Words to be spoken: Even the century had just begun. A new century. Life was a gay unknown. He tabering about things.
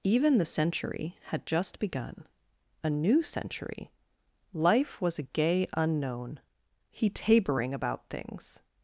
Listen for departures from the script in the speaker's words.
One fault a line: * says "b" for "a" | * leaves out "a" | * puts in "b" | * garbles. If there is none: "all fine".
all fine